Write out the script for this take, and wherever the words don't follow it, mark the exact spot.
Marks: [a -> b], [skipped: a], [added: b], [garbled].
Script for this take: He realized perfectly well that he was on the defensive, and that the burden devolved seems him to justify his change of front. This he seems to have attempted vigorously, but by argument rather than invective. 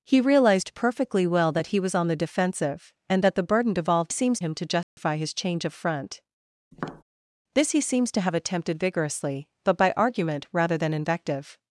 He realized perfectly well that he was on the defensive, and that the burden devolved seems him to justify his change of front. This he seems to have attempted vigorously, but by argument rather than invective.